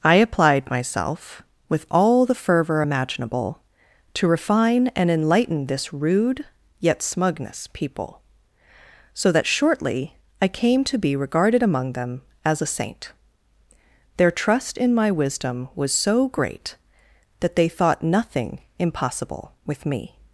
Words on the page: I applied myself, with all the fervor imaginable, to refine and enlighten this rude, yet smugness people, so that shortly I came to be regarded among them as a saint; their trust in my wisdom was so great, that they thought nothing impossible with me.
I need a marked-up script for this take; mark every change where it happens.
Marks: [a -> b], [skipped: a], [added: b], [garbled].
I applied myself, with all the fervor imaginable, to refine and enlighten this rude, yet smugness people, so that shortly I came to be regarded among them as a saint; their trust in my wisdom was so great, that they thought nothing impossible with me.